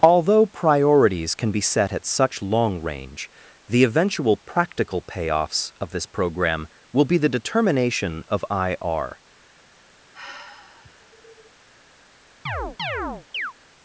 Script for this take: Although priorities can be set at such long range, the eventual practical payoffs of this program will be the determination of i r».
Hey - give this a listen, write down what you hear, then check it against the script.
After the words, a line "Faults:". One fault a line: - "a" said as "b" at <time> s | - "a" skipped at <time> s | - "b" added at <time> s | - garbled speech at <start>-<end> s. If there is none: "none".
Although priorities can be set at such long range, the eventual practical payoffs of this program will be the determination of i r».
Faults:
none